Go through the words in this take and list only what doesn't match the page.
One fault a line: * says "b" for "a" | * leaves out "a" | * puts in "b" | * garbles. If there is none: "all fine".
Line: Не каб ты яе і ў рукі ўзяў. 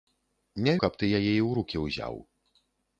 all fine